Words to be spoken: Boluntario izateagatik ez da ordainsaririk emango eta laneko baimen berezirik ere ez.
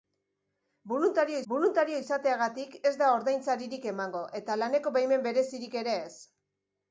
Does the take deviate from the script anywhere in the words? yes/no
yes